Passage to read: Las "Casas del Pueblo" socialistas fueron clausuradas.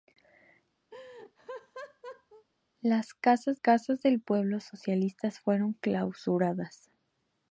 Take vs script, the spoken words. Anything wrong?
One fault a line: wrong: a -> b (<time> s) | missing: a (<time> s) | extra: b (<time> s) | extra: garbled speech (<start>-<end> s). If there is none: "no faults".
extra: casas (3.5 s)